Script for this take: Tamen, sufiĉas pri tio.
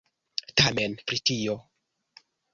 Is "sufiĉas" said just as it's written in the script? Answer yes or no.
no